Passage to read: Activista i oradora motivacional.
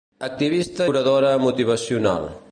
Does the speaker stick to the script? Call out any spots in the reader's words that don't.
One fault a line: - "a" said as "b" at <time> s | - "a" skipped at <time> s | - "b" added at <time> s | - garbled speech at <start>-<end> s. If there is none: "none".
- "i" skipped at 0.9 s